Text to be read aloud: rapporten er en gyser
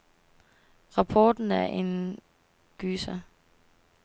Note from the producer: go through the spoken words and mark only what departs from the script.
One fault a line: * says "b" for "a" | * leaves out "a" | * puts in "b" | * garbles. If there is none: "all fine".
all fine